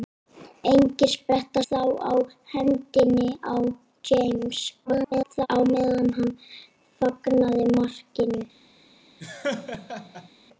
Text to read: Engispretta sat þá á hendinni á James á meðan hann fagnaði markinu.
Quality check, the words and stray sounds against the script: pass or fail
fail